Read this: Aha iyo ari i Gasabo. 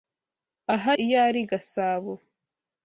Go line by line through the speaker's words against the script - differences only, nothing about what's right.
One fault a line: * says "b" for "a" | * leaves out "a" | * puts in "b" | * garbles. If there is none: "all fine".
all fine